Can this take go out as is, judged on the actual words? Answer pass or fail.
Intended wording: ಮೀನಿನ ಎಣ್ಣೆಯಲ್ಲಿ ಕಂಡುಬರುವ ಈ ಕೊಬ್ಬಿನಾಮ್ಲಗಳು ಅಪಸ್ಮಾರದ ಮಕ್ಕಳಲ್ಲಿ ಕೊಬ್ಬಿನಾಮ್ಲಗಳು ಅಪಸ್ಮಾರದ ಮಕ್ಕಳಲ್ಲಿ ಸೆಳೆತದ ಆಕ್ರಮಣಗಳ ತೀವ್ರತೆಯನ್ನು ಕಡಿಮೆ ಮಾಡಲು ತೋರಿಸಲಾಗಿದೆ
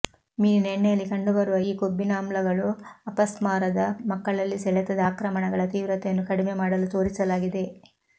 fail